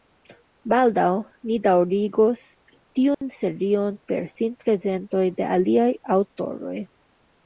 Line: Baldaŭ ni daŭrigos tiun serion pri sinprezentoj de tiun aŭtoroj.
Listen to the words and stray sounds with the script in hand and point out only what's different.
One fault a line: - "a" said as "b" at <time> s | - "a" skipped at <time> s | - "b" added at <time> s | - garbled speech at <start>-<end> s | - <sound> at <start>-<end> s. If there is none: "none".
- dropout at 3.1-3.2 s
- "pri" said as "per" at 4.1 s
- "tiun" said as "aliaj" at 5.6 s